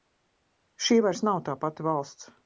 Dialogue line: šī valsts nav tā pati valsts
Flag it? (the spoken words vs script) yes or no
yes